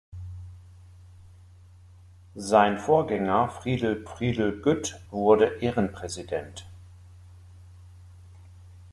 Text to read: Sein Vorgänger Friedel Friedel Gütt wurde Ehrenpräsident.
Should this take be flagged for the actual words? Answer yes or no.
no